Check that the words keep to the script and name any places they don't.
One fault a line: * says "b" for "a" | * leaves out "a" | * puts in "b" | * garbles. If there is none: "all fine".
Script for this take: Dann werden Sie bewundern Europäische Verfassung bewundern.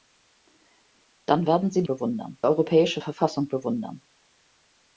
all fine